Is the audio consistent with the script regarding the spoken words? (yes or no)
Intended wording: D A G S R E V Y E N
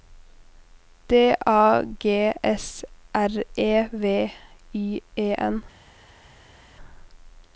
yes